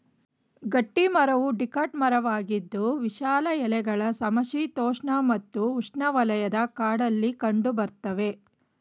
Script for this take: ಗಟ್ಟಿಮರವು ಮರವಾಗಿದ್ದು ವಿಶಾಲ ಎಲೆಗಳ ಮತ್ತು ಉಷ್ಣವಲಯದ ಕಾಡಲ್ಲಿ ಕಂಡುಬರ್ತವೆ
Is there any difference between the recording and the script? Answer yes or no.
yes